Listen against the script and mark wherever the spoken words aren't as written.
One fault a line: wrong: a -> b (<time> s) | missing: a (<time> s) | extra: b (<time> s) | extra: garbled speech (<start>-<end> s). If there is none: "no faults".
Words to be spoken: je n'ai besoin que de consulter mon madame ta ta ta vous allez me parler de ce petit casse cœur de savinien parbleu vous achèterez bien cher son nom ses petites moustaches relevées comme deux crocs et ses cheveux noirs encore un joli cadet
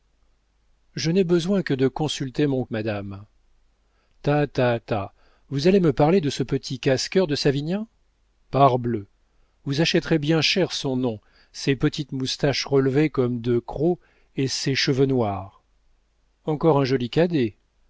no faults